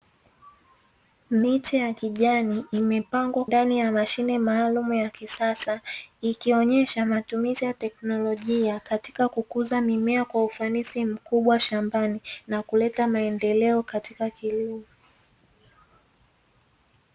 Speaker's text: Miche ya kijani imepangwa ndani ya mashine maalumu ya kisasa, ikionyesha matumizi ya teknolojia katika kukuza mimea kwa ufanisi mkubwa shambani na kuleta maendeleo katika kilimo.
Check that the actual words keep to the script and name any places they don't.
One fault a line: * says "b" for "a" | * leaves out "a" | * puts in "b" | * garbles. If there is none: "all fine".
all fine